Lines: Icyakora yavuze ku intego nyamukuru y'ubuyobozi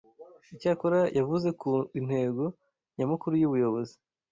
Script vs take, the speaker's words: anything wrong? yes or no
no